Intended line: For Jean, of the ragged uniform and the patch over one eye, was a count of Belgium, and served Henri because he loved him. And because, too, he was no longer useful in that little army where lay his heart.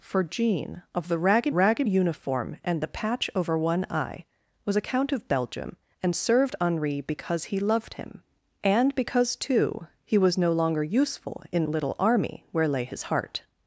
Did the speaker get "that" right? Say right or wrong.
wrong